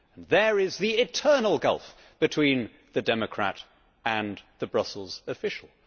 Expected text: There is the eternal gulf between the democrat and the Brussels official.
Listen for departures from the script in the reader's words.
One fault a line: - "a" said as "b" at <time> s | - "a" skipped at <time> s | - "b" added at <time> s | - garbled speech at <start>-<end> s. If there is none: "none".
none